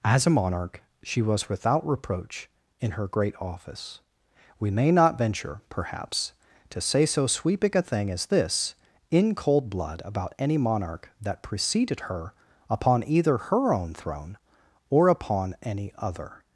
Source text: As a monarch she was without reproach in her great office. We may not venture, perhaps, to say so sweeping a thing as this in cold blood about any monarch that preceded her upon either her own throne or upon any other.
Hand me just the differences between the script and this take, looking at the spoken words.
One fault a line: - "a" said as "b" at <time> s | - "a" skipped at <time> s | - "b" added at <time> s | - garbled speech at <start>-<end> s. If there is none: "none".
none